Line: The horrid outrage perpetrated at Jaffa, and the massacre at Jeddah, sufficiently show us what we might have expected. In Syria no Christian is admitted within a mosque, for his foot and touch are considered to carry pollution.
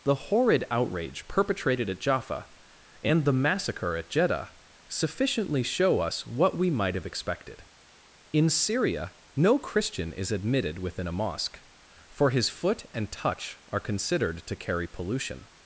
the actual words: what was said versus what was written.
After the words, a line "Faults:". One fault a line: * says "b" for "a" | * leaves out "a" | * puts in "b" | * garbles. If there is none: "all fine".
The horrid outrage perpetrated at Jaffa, and the massacre at Jeddah, sufficiently show us what we might have expected. In Syria no Christian is admitted within a mosque, for his foot and touch are considered to carry pollution.
Faults:
all fine